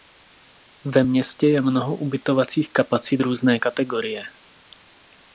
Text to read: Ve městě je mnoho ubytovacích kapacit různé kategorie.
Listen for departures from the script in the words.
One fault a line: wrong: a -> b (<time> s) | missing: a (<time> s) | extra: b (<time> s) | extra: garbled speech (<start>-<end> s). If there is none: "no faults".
no faults